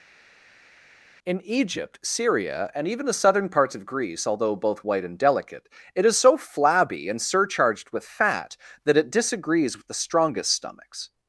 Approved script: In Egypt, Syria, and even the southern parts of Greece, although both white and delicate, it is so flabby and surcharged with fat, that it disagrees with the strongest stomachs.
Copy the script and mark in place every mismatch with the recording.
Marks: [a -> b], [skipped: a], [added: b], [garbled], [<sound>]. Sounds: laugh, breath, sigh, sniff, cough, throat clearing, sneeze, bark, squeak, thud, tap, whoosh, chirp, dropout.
In Egypt, Syria, and even the southern parts of Greece, although both white and delicate, it is so flabby and surcharged with fat, that it disagrees with the strongest stomachs.